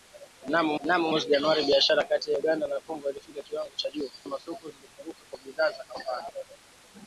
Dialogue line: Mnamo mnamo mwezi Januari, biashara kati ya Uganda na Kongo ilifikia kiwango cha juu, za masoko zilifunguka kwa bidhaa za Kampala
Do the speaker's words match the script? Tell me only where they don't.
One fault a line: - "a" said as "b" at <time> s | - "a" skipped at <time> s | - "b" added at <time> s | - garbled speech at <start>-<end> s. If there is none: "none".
none